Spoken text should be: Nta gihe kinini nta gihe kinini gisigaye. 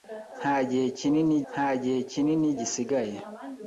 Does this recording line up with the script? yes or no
yes